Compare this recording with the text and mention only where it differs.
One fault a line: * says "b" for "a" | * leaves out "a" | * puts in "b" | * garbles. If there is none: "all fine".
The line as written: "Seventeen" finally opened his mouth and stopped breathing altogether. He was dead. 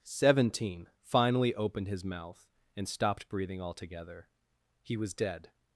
all fine